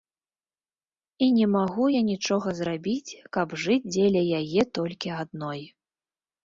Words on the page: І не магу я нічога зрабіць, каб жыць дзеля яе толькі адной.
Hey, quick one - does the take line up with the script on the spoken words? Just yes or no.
yes